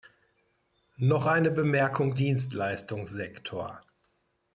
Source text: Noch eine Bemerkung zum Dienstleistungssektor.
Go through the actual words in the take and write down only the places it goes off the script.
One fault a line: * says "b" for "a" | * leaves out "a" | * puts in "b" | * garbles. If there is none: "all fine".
* leaves out "zum"